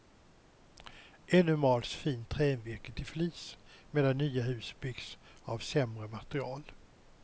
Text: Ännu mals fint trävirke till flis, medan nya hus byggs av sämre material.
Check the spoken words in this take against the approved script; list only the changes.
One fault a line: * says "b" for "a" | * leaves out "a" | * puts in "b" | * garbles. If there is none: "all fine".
all fine